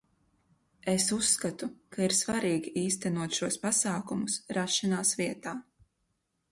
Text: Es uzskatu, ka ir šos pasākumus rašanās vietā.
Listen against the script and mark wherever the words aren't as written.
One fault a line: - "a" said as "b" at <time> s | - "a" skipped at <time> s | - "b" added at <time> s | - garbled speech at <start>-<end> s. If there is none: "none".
- "svarīgi īstenot" added at 2.2 s